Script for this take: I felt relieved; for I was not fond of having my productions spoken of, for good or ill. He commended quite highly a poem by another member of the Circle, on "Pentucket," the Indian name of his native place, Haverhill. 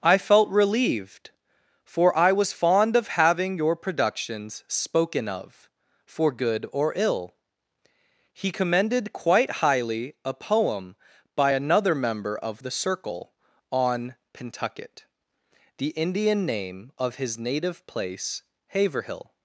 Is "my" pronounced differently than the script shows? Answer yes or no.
yes